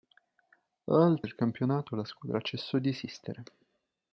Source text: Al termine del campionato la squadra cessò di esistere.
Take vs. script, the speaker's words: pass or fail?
fail